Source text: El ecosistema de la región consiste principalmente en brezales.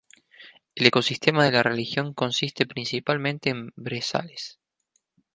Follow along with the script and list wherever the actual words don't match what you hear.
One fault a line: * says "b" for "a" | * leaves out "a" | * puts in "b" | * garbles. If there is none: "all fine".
all fine